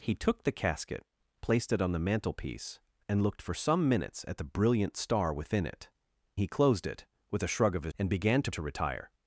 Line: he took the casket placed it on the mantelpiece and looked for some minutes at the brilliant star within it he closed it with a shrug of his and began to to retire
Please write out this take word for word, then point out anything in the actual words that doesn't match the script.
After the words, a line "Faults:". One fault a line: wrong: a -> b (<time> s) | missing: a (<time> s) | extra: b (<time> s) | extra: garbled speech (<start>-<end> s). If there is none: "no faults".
he took the casket placed it on the mantelpiece and looked for some minutes at the brilliant star within it he closed it with a shrug of his and began to to retire
Faults:
no faults